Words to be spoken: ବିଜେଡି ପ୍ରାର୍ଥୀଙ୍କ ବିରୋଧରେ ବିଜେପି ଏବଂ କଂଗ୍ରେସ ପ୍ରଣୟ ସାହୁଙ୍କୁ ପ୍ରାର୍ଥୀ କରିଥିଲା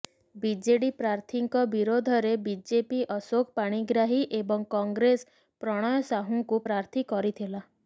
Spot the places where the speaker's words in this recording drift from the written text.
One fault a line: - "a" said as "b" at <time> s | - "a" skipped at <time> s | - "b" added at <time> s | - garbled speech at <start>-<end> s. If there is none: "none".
- "ଅଶୋକ ପାଣିଗ୍ରାହୀ" added at 3.2 s